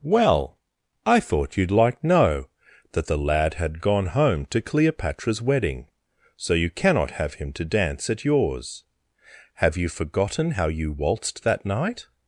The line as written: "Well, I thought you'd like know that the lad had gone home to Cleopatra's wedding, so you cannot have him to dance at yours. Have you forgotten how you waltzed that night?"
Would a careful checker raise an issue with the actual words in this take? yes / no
no